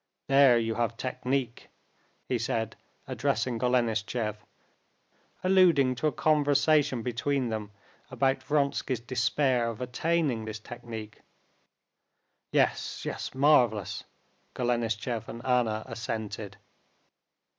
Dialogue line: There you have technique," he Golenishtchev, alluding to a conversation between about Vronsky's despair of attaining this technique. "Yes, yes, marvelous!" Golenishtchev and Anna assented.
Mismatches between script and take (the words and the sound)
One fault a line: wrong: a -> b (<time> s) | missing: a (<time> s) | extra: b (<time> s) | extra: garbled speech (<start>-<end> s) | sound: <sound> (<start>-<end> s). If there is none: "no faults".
extra: said addressing (2.4 s)
extra: them (7.5 s)